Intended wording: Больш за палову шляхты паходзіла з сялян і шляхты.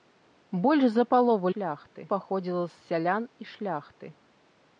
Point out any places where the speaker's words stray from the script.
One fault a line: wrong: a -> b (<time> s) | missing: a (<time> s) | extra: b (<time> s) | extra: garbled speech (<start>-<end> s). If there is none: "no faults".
no faults